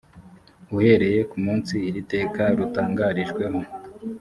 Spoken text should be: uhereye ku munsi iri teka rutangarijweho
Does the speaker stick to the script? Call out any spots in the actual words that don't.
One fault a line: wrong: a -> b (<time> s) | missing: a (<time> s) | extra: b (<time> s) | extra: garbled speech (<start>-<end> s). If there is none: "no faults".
no faults